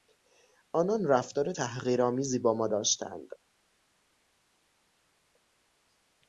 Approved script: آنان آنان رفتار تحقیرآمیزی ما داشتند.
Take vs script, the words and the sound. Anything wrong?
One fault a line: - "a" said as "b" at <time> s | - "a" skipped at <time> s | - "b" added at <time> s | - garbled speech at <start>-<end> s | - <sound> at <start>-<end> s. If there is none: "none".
- "آنان" skipped at 1.1 s
- "با" added at 2.4 s